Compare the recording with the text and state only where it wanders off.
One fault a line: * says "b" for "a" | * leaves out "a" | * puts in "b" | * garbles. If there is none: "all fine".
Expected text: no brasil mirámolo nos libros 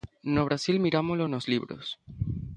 all fine